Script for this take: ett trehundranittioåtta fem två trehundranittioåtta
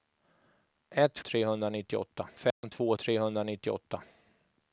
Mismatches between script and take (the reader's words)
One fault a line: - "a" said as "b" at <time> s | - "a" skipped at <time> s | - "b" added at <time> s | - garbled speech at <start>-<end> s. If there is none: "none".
none